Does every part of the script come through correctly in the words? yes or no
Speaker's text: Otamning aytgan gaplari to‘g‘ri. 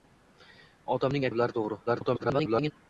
no